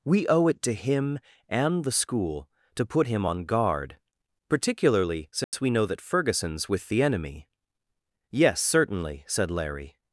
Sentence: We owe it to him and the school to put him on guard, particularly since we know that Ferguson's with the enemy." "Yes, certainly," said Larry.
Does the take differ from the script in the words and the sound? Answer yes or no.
yes